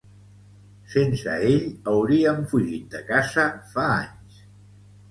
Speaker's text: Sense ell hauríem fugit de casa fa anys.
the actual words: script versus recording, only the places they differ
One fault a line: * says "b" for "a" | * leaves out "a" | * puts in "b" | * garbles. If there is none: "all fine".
all fine